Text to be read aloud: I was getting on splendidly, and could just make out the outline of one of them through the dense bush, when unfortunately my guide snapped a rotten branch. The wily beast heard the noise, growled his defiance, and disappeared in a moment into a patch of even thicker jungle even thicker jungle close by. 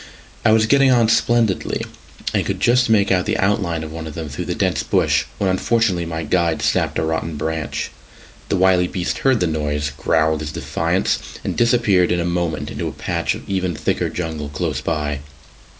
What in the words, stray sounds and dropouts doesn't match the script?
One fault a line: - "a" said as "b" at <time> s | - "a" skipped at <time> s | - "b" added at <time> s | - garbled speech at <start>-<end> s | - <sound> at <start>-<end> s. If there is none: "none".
- "even thicker jungle" skipped at 14.5 s